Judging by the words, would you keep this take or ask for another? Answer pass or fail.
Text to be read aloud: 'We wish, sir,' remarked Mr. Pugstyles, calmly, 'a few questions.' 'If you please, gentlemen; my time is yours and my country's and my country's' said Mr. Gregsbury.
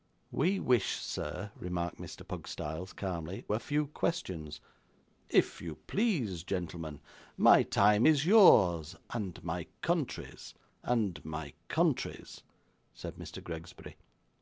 pass